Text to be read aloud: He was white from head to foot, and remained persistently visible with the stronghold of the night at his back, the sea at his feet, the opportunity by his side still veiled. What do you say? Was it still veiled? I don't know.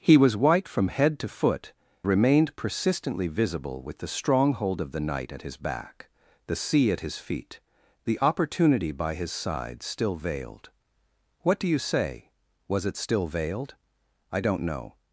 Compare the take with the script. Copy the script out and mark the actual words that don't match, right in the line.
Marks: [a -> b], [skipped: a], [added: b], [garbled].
He was white from head to foot, [skipped: and] remained persistently visible with the stronghold of the night at his back, the sea at his feet, the opportunity by his side still veiled. What do you say? Was it still veiled? I don't know.